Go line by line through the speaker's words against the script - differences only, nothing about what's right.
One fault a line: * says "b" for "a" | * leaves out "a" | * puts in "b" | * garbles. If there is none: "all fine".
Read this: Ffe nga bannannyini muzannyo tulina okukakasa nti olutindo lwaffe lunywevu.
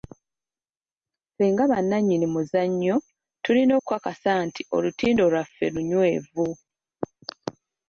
all fine